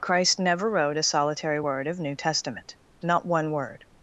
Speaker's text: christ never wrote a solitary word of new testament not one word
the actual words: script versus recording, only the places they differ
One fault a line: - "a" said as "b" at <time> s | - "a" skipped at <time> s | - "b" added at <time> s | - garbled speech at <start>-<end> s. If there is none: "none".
none